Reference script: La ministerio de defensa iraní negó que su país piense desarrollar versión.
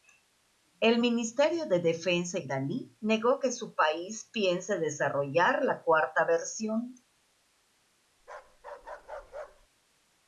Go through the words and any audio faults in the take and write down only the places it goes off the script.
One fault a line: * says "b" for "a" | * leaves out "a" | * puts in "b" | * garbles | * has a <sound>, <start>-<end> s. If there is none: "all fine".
* says "El" for "La"
* puts in "la cuarta"
* has a bark, 8.2-9.7 s